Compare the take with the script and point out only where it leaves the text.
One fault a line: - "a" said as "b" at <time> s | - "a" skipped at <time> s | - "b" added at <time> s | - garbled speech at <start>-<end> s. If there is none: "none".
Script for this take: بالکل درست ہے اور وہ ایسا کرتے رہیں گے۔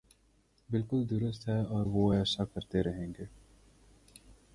none